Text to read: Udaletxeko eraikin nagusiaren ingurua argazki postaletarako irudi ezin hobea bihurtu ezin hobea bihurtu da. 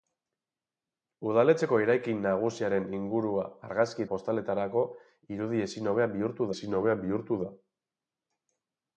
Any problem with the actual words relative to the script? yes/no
no